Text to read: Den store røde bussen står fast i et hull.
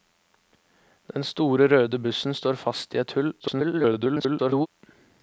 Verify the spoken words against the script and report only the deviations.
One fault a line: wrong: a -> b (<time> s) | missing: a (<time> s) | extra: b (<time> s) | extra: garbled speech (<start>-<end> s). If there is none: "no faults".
extra: garbled speech (3.4-4.7 s)